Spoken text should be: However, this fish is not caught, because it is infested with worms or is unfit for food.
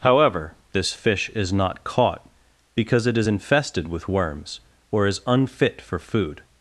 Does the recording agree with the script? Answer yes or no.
yes